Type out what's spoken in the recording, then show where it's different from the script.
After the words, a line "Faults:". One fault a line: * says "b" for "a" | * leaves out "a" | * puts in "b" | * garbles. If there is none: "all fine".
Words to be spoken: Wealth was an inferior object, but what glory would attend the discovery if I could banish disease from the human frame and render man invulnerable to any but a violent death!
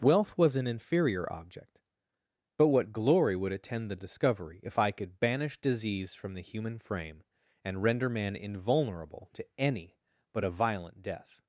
Wealth was an inferior object, but what glory would attend the discovery if I could banish disease from the human frame and render man invulnerable to any but a violent death!
Faults:
all fine